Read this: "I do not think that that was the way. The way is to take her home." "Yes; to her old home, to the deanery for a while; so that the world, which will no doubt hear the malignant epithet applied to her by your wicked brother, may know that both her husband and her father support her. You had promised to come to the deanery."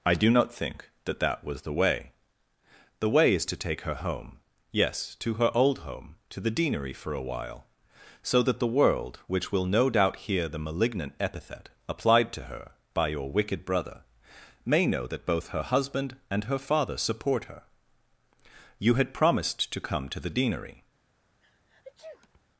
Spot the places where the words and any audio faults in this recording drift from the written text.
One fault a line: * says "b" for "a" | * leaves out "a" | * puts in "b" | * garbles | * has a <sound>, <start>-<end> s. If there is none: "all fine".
* has a sneeze, 21.4-22.4 s